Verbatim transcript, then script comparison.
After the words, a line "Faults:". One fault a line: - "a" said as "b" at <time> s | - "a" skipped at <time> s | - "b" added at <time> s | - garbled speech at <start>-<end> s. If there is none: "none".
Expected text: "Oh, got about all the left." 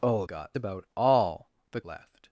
"Oh, got about all the left."
Faults:
none